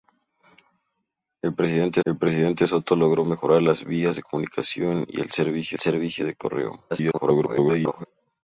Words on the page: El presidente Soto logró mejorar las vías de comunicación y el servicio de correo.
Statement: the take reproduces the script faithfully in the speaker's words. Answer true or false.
false